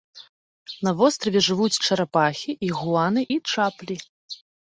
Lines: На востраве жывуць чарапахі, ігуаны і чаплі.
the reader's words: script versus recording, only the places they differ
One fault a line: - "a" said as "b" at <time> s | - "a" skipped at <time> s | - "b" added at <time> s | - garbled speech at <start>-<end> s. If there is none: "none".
none